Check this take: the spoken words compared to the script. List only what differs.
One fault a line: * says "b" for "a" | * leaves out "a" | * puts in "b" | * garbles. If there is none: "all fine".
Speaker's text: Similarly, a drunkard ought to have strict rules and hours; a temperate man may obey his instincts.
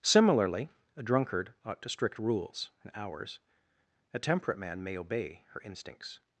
* leaves out "have"
* says "her" for "his"